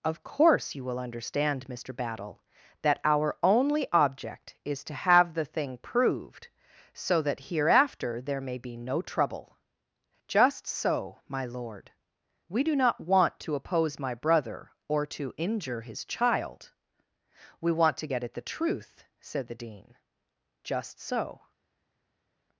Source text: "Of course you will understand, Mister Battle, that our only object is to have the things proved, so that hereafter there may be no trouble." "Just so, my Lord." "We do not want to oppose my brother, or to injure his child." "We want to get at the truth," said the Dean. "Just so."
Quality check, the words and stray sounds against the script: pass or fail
fail